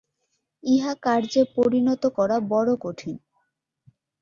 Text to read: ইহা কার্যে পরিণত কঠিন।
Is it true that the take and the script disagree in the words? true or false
true